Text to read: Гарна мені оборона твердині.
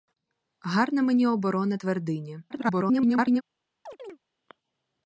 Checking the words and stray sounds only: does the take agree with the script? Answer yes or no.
no